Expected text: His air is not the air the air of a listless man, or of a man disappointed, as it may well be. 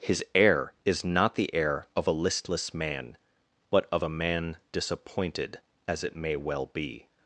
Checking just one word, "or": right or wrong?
wrong